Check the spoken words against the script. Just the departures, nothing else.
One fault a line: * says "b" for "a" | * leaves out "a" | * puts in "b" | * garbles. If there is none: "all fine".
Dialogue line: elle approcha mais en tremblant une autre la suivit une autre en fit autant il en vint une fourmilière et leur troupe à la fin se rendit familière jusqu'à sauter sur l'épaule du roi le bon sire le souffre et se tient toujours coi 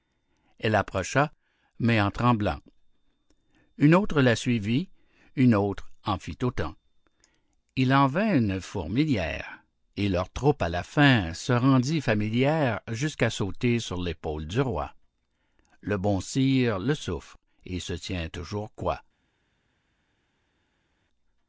all fine